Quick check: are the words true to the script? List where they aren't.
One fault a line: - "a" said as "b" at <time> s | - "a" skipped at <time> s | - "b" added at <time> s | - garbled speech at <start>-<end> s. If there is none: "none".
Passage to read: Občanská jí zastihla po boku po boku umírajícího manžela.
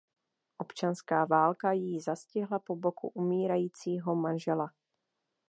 - "válka" added at 1.2 s
- "po boku" skipped at 3.1 s